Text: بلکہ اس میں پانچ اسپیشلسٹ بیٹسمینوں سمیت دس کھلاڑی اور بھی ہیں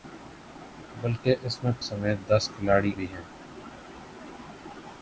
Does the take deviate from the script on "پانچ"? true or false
true